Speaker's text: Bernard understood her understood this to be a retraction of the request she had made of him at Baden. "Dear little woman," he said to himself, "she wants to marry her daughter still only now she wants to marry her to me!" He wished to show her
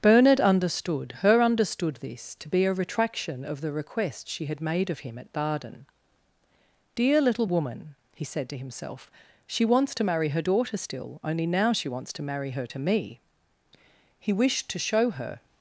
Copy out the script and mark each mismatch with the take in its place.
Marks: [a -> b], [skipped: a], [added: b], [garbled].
Bernard understood her understood this to be a retraction of the request she had made of him at Baden. "Dear little woman," he said to himself, "she wants to marry her daughter still only now she wants to marry her to me!" He wished to show her